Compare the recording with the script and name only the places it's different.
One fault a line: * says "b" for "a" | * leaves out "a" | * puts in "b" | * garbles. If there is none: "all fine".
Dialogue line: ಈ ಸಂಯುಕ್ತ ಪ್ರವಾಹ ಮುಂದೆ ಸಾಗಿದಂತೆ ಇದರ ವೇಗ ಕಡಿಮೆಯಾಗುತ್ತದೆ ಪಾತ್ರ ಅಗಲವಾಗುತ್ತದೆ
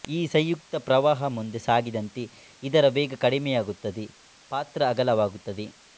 all fine